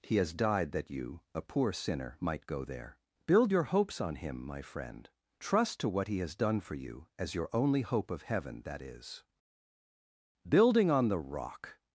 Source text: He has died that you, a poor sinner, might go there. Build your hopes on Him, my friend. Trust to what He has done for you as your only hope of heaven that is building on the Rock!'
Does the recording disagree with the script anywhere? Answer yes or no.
no